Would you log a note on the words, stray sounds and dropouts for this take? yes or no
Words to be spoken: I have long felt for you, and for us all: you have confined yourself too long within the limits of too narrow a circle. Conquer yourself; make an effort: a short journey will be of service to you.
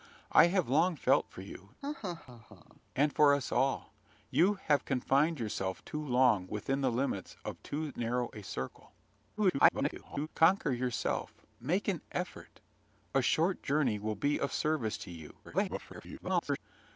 yes